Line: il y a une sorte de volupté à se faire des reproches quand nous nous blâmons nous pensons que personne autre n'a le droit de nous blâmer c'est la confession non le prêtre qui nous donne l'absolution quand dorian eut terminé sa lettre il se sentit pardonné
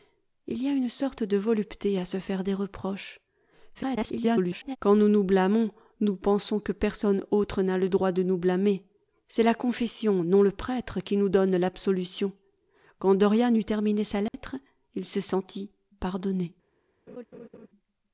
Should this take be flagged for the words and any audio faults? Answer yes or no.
yes